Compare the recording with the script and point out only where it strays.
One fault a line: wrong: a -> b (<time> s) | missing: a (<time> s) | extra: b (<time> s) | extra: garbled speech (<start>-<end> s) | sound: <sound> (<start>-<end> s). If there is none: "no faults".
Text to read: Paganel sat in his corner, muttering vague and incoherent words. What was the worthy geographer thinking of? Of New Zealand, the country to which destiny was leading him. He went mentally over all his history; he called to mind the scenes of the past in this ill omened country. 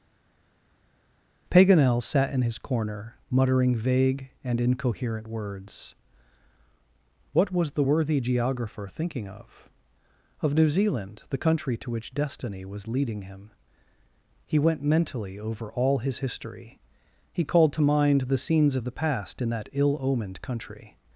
wrong: this -> that (19.5 s)